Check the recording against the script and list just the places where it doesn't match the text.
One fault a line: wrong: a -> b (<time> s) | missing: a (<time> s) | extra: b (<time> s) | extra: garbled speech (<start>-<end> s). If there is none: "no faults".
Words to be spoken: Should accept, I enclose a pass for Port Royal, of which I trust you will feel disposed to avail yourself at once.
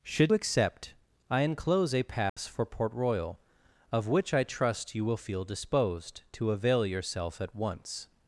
no faults